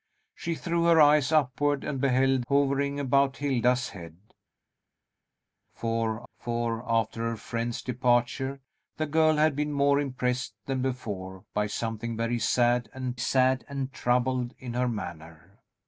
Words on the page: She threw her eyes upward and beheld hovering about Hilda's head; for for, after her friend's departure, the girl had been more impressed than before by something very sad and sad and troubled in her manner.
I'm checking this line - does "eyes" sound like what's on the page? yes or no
yes